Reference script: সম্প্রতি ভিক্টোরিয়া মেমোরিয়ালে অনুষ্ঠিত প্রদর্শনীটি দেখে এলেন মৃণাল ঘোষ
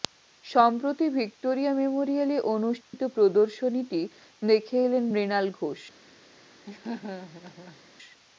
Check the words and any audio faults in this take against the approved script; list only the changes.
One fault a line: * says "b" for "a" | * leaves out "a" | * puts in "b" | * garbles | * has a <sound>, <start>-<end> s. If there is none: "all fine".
* has a dropout, 2.8-2.9 s
* has a laugh, 6.7-7.8 s